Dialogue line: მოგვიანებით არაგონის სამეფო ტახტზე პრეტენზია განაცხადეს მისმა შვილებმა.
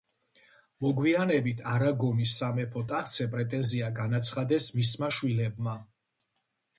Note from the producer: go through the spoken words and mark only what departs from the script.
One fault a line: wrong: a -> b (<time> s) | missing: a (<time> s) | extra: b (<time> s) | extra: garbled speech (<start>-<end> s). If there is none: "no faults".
no faults